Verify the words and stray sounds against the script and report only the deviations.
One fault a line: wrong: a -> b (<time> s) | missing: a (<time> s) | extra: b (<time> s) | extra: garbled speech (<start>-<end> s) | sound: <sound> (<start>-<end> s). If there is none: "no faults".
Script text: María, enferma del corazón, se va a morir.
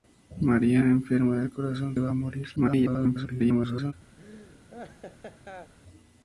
missing: se (1.9 s)
extra: garbled speech (2.6-3.9 s)
sound: laugh (4.2-5.7 s)